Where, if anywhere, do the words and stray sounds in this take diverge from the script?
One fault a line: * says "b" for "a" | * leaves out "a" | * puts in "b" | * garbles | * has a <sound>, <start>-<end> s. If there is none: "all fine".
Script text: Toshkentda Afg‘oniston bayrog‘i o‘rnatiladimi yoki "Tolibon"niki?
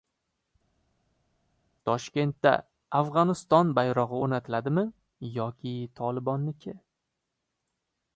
all fine